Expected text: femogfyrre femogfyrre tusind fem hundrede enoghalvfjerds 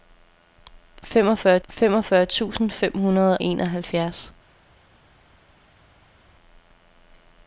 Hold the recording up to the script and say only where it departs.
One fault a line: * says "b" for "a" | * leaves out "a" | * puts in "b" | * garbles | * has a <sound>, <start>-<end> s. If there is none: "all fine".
all fine